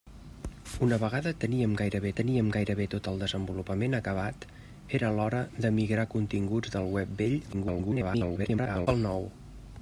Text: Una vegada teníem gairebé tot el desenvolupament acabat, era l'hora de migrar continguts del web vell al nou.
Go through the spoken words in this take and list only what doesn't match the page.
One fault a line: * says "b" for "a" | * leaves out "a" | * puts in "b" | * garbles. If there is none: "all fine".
* puts in "teníem gairebé"
* garbles